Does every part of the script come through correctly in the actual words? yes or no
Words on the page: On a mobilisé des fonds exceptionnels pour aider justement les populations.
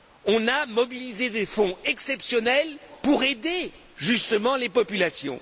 yes